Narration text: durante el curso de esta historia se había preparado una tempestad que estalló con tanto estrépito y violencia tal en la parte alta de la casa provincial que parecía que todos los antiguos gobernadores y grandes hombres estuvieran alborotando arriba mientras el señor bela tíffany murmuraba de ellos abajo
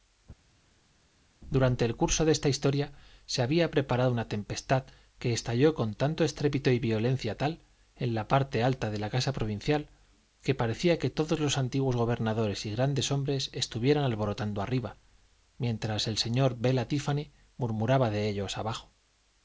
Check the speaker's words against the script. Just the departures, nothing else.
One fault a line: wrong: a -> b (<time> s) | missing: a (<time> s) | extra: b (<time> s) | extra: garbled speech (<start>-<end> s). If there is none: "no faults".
no faults